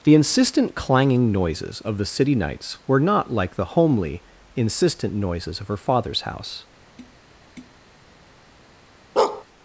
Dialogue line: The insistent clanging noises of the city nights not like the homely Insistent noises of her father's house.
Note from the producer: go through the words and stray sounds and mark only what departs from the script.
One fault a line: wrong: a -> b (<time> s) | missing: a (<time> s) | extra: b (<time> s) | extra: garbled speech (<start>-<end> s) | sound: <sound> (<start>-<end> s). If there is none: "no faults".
extra: were (2.9 s)
sound: tap (7.0-7.8 s)
sound: bark (9.2-9.4 s)